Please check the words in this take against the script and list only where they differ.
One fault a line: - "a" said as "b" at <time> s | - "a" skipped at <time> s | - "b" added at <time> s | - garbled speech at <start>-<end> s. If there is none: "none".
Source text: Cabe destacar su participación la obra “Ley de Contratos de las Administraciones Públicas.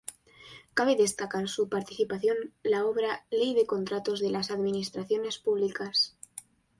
none